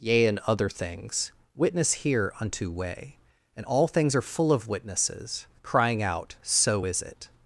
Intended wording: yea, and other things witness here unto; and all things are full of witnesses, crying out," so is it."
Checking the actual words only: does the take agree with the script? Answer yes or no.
no